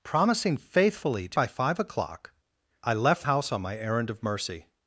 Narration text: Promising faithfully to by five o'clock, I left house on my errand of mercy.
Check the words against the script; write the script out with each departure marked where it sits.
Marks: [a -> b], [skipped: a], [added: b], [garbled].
Promising faithfully to by five o'clock, I left house on my errand of mercy.